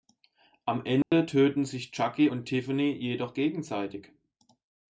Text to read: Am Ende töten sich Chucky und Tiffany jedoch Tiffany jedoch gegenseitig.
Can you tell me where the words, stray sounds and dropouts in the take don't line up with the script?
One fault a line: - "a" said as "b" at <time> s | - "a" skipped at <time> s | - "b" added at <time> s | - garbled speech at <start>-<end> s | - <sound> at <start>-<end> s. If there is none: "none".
- dropout at 1.0-1.1 s
- "Tiffany jedoch" skipped at 3.3 s